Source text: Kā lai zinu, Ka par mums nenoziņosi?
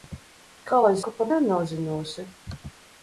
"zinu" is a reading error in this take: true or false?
true